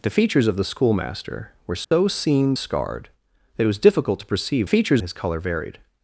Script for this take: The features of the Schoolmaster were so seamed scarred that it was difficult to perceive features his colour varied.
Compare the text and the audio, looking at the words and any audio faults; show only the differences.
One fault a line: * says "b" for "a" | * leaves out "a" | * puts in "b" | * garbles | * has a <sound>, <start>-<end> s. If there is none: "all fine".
* has a dropout, 1.8-1.9 s